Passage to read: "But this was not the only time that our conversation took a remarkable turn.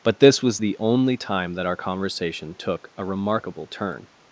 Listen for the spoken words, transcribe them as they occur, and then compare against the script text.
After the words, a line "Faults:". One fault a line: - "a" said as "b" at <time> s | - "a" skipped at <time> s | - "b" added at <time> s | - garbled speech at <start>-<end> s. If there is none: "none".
"But this was the only time that our conversation took a remarkable turn.
Faults:
- "not" skipped at 0.6 s